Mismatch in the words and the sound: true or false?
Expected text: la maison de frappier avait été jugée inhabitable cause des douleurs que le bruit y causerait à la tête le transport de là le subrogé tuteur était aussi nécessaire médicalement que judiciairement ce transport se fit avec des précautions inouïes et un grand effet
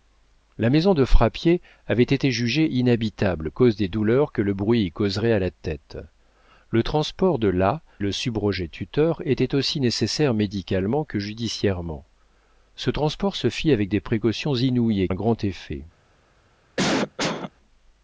true